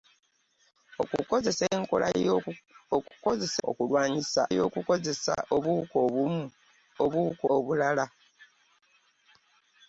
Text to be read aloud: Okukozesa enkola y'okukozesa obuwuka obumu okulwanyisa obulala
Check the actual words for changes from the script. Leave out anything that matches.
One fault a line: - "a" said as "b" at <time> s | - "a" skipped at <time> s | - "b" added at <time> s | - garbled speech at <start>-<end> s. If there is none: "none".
- "enkola" said as "okulwanyisa" at 3.7 s
- "okulwanyisa" said as "obuwuka" at 7.0 s